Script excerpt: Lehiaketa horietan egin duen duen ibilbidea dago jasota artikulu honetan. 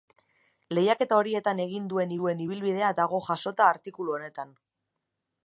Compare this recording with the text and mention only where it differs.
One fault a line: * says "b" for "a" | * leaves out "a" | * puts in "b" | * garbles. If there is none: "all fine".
all fine